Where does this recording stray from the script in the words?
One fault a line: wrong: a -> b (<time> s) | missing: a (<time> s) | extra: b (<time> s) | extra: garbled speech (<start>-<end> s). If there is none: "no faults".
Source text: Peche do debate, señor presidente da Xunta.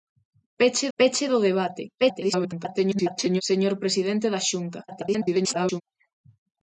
extra: peche (1.0 s)
extra: garbled speech (2.0-3.4 s)
extra: garbled speech (4.9-5.8 s)